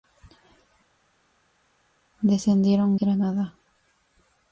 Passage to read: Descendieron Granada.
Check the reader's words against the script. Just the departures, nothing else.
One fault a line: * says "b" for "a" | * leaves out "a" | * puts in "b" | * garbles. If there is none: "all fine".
all fine